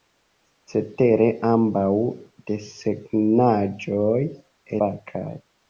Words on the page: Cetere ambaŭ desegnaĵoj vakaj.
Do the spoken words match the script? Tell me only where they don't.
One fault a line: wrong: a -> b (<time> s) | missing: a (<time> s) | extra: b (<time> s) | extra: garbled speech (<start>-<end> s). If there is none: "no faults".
no faults